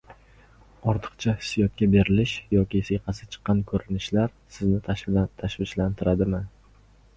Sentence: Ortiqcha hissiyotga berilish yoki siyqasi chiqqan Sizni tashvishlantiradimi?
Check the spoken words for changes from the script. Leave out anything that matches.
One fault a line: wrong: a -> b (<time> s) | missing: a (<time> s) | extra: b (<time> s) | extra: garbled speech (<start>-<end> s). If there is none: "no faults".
extra: ko‘rinishlar (3.7 s)